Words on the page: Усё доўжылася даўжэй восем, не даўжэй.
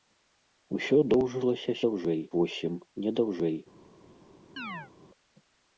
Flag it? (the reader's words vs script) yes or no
no